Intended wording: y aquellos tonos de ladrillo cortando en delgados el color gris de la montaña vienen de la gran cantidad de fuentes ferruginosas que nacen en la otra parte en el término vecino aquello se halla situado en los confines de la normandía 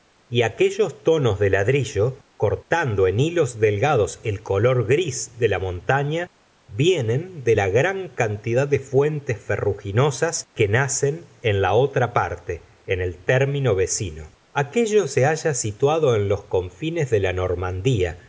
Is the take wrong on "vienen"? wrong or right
right